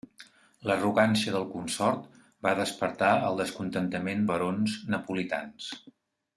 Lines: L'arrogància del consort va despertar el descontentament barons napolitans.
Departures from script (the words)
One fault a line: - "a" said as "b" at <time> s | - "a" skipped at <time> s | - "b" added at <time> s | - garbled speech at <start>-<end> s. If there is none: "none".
none